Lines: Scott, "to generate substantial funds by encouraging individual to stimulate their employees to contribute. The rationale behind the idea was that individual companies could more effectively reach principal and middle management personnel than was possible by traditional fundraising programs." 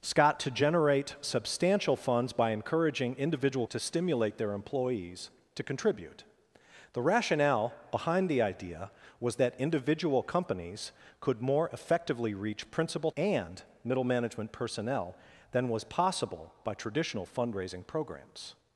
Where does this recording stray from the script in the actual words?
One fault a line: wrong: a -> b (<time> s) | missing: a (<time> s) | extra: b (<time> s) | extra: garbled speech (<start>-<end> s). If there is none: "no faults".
no faults